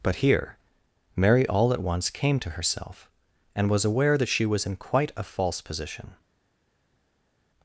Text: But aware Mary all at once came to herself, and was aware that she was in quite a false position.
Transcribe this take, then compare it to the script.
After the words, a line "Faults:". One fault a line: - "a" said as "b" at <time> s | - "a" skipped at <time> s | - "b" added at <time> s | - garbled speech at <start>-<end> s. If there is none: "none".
But here Mary all at once came to herself, and was aware that she was in quite a false position.
Faults:
- "aware" said as "here" at 0.2 s